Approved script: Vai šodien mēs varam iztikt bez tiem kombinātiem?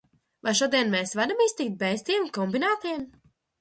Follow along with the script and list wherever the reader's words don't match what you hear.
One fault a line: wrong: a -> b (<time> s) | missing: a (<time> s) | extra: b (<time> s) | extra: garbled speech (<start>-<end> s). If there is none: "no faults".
no faults